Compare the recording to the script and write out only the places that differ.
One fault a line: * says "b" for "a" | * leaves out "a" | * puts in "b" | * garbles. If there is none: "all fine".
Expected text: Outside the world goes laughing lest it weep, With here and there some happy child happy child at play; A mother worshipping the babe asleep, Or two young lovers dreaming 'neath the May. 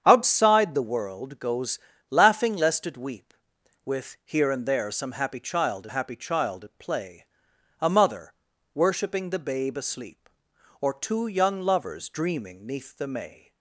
all fine